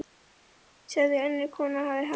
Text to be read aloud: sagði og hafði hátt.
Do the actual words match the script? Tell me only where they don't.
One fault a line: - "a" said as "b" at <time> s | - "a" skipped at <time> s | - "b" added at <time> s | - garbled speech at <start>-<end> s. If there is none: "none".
- "önnur kona" added at 1.2 s